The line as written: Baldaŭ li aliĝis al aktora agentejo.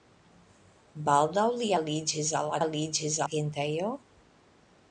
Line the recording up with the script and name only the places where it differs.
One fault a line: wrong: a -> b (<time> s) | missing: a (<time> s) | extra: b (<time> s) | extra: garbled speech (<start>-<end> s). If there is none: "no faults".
wrong: aktora -> aliĝis (2.6 s)